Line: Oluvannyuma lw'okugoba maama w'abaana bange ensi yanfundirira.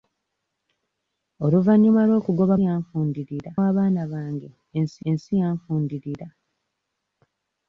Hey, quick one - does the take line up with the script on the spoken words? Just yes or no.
no